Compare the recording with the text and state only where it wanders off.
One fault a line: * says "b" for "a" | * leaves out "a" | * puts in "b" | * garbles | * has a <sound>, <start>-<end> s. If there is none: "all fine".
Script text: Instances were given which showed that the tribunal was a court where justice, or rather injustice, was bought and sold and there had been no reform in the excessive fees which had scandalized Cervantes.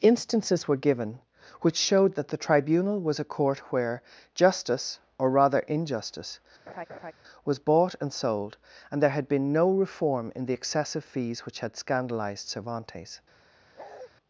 * has a laugh, 6.7-7.1 s
* has a bark, 13.8-14.1 s